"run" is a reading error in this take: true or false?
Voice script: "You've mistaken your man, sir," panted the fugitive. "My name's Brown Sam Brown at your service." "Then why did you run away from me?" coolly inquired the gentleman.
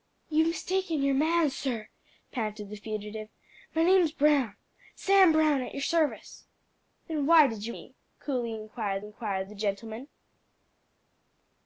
true